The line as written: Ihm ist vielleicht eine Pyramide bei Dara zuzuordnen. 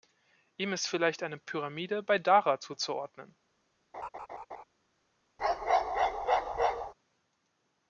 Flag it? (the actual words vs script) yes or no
no